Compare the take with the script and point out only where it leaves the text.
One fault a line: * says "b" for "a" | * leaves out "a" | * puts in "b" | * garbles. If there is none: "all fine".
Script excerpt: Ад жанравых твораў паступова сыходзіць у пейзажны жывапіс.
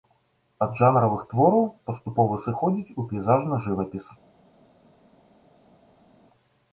all fine